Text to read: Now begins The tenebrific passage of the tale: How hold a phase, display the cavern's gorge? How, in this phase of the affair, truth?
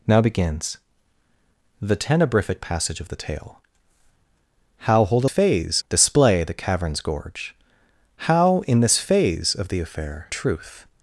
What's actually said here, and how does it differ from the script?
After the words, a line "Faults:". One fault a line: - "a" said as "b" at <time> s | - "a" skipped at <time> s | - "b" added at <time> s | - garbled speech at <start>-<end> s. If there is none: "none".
Now begins The tenebrific passage of the tale: How hold a phase, display the cavern's gorge? How, in this phase of the affair, truth?
Faults:
none